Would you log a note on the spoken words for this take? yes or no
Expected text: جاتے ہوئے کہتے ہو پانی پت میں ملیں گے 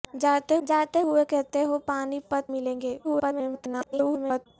yes